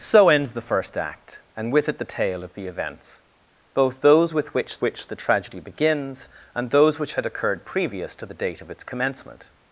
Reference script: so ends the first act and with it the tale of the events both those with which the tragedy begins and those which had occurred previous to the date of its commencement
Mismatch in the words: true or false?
true